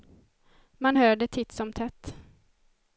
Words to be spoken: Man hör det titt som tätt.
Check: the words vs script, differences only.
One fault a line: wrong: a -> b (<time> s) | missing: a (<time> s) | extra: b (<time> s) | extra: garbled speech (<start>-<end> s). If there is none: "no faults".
no faults